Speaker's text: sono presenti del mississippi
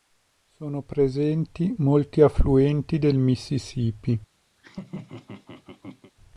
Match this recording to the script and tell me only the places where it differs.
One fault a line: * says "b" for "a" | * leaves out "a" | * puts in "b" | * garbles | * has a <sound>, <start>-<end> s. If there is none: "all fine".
* puts in "molti affluenti"
* has a laugh, 4.6-6.1 s